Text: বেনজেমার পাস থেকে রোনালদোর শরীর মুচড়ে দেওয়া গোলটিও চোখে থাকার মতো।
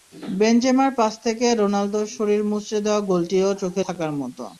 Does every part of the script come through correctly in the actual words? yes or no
yes